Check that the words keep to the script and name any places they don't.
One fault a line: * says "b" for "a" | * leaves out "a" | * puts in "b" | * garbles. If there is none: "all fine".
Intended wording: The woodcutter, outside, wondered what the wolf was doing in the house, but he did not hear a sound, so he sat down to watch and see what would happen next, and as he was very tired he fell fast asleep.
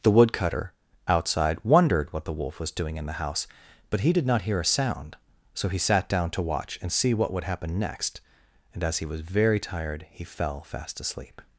all fine